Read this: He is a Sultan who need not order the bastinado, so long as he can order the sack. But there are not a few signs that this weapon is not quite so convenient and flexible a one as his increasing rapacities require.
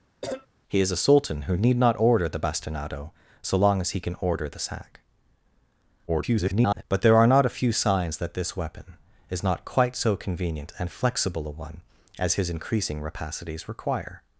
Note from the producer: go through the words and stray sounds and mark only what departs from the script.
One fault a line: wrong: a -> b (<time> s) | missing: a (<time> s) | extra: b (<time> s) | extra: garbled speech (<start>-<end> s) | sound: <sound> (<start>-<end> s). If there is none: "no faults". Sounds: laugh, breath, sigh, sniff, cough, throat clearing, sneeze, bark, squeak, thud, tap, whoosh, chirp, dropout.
sound: cough (0.2-0.5 s)
extra: garbled speech (6.1-6.8 s)